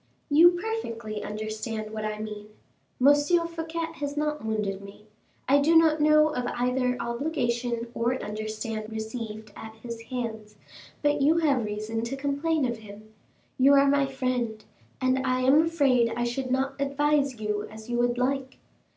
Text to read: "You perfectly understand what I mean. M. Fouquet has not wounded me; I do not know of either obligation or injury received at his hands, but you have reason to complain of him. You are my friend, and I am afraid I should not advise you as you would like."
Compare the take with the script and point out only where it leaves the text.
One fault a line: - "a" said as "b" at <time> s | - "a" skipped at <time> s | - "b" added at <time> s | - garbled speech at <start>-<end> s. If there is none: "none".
- "injury" said as "understand" at 8.2 s